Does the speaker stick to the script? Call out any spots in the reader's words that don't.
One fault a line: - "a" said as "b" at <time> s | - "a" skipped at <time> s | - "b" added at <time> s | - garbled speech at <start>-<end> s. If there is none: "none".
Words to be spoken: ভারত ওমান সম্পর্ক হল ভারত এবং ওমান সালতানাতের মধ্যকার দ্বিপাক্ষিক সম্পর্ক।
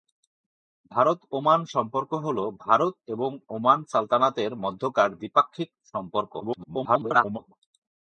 - garbled speech at 6.4-7.4 s